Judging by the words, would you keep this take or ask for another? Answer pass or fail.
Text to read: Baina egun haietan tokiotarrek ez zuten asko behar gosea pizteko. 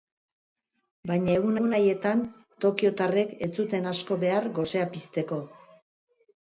fail